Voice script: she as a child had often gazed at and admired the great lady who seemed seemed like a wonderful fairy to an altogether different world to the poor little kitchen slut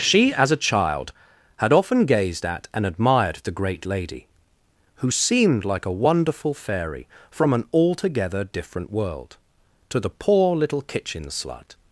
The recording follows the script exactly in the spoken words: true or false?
false